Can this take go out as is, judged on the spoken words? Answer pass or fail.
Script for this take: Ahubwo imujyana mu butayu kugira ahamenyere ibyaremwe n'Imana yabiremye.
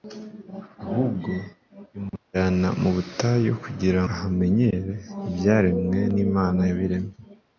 pass